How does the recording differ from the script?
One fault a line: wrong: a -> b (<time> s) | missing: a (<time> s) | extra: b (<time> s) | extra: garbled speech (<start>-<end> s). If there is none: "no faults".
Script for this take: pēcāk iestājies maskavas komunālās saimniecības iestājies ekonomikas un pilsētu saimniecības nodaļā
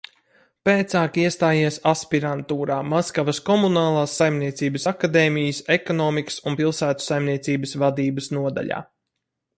extra: aspirantūrā (1.9 s)
wrong: iestājies -> akadēmijas (4.9 s)
extra: vadības (7.8 s)